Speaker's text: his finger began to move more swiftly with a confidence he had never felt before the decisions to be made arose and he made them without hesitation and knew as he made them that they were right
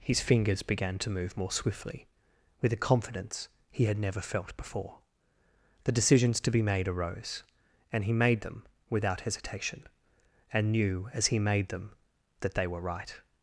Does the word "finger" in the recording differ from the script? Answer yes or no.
yes